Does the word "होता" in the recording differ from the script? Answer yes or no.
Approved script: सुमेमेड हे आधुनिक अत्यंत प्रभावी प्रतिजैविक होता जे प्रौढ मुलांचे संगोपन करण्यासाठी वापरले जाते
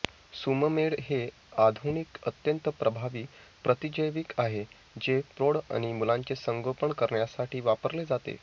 yes